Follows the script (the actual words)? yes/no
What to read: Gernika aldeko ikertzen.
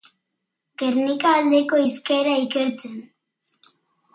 no